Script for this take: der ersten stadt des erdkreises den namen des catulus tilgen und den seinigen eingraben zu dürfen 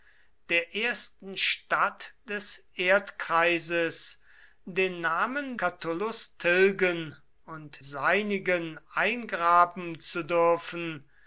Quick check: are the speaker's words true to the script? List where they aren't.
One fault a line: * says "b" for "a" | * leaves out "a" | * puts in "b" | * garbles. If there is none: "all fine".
* leaves out "des"
* leaves out "den"